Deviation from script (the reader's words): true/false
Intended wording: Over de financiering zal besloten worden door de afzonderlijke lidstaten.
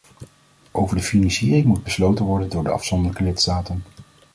true